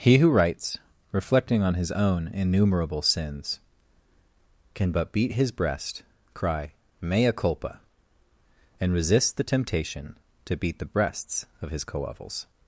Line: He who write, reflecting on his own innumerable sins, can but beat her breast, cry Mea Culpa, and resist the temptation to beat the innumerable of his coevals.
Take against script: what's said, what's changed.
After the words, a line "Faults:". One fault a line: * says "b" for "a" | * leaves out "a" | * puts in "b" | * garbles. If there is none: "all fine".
He who writes, reflecting on his own innumerable sins, can but beat his breast, cry Mea Culpa, and resist the temptation to beat the breasts of his coevals.
Faults:
* says "writes" for "write"
* says "his" for "her"
* says "breasts" for "innumerable"